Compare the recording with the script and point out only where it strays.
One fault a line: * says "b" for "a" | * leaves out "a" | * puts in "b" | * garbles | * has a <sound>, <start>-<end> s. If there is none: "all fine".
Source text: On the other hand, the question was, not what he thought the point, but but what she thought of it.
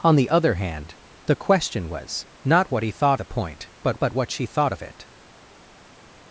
all fine